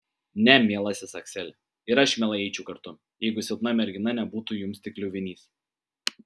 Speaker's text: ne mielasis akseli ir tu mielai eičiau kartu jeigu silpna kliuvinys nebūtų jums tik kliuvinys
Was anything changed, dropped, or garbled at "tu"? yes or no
yes